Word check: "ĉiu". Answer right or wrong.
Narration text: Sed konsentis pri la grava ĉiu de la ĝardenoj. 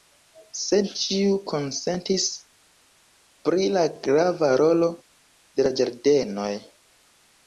wrong